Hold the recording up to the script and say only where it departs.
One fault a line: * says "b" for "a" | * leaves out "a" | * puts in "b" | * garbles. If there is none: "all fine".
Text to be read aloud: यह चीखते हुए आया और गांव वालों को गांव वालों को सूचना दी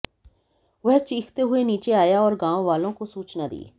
* says "वह" for "यह"
* puts in "नीचे"
* leaves out "गांव वालों को"